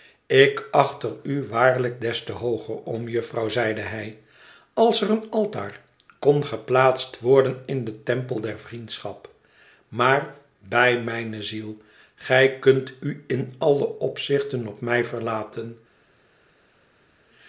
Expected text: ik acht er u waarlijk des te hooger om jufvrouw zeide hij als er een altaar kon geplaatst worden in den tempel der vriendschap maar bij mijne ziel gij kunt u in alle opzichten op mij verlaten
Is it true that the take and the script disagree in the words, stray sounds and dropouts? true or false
false